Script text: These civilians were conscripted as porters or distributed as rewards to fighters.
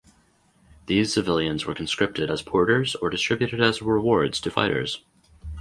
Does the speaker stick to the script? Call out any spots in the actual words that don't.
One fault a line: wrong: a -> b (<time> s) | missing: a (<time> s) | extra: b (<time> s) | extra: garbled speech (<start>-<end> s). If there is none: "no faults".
no faults